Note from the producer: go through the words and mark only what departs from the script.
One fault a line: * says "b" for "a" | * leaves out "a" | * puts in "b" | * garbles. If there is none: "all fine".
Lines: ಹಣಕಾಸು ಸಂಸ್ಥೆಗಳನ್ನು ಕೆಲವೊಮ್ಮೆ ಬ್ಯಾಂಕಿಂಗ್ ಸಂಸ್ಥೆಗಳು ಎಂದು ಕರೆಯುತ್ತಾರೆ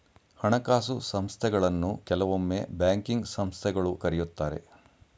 * leaves out "ಎಂದು"